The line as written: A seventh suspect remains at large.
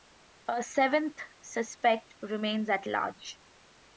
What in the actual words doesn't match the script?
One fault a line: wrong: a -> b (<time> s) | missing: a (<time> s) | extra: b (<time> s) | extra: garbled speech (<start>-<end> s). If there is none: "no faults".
no faults